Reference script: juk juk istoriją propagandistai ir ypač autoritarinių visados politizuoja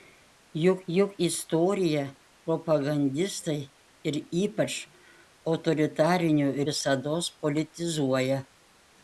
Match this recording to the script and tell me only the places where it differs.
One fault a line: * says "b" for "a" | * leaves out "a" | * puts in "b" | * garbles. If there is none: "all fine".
all fine